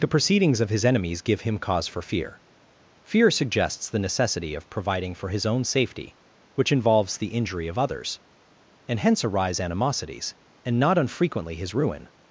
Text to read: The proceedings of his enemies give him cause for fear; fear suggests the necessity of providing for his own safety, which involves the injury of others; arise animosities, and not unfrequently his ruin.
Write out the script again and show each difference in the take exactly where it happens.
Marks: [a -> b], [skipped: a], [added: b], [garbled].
The proceedings of his enemies give him cause for fear; fear suggests the necessity of providing for his own safety, which involves the injury of others; [added: and hence] arise animosities, and not unfrequently his ruin.